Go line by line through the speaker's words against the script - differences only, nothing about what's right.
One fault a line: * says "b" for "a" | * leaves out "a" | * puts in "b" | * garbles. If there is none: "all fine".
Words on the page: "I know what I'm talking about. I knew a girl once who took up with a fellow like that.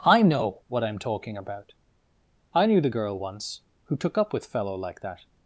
* says "the" for "a"
* leaves out "a"